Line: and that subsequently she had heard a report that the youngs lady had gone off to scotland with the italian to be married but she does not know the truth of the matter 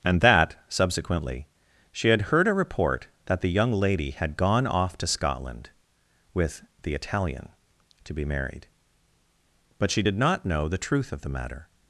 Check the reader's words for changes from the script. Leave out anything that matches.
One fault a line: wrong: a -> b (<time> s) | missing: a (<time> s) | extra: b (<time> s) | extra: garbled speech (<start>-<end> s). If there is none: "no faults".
wrong: youngs -> young (3.5 s)
wrong: does -> did (10.0 s)